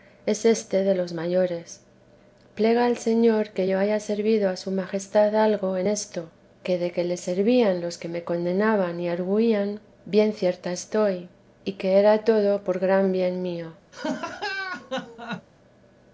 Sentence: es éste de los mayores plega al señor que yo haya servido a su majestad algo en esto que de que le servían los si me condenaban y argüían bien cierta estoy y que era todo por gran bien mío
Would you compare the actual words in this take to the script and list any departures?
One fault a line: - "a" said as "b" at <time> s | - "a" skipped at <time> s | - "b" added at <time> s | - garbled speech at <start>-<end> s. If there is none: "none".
- "si" said as "que" at 8.0 s